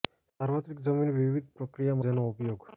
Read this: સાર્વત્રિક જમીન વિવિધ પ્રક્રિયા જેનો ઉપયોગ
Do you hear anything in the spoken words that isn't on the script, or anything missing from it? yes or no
no